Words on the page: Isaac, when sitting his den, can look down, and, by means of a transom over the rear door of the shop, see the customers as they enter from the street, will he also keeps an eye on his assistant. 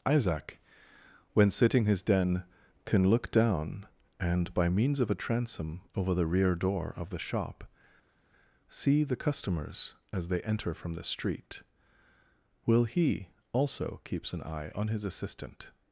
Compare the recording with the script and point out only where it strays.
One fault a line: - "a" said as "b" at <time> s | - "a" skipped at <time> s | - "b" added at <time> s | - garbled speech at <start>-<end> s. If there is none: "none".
none